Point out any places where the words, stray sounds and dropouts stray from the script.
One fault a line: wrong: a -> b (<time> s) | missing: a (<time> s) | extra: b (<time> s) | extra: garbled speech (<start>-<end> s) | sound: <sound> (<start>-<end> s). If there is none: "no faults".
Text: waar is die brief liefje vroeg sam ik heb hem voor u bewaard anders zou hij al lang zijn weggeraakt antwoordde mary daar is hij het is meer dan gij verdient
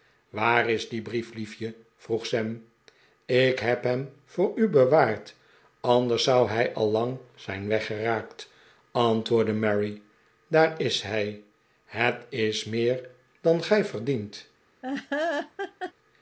sound: laugh (14.8-15.9 s)